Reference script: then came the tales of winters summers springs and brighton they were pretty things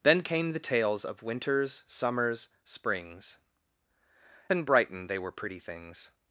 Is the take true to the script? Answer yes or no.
yes